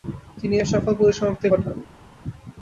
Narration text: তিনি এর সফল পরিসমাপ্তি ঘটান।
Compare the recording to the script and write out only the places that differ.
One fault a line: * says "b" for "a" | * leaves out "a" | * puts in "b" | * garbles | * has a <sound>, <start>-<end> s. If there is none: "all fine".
all fine